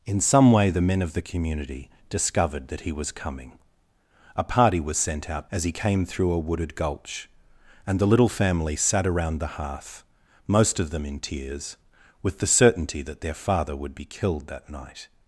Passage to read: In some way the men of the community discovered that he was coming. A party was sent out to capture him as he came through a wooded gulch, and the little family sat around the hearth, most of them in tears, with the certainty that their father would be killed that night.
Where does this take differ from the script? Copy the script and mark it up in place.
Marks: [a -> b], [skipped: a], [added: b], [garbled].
In some way the men of the community discovered that he was coming. A party was sent out [skipped: to capture him] as he came through a wooded gulch, and the little family sat around the hearth, most of them in tears, with the certainty that their father would be killed that night.